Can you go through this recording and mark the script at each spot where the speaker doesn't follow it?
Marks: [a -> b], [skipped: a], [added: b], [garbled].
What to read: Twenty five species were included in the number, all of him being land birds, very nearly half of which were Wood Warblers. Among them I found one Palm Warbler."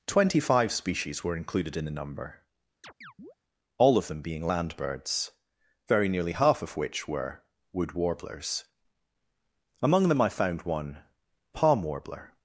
Twenty five species were included in the number, all of [him -> them] being land birds, very nearly half of which were Wood Warblers. Among them I found one Palm Warbler."